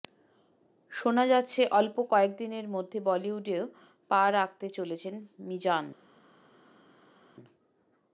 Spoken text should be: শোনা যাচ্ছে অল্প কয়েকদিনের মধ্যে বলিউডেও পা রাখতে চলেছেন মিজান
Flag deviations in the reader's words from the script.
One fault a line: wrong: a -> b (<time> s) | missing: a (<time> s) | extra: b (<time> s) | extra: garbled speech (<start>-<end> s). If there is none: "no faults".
no faults